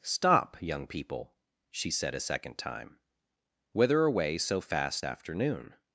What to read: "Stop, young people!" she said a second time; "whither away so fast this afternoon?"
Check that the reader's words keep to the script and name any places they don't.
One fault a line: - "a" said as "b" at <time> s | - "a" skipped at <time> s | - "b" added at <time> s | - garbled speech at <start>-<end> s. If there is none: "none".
- "this" skipped at 5.0 s